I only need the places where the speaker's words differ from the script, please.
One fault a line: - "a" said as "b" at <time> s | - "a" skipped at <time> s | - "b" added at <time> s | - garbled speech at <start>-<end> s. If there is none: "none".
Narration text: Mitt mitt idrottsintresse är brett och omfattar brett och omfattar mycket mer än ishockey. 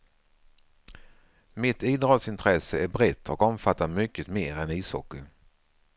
- "mitt" skipped at 1.8 s
- "brett och omfattar" skipped at 3.9 s